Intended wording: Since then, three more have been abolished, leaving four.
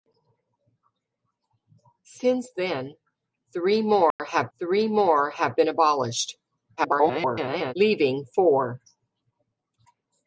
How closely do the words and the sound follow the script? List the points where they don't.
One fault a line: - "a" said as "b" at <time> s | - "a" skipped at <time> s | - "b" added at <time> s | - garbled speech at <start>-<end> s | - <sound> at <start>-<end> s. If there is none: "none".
- dropout at 4.1-4.2 s
- "three more have" added at 4.6 s
- garbled speech at 6.8-7.7 s